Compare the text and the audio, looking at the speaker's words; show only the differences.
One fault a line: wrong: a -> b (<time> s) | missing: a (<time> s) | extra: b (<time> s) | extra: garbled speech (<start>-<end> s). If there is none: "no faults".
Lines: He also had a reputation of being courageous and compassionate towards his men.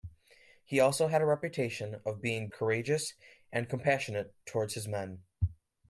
no faults